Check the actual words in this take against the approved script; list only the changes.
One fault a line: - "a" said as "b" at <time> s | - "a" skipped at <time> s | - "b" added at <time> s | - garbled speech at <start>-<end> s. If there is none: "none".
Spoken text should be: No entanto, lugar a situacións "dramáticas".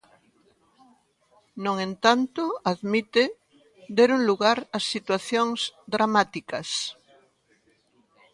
- "admite deron" added at 2.7 s